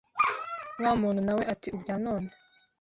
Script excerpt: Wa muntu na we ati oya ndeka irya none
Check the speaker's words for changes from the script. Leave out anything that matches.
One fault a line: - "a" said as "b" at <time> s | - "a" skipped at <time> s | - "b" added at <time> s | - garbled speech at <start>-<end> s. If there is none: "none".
- "oya ndeka" skipped at 1.7 s